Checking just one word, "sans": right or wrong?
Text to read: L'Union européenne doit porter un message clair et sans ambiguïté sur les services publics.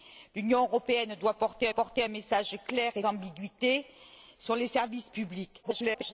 wrong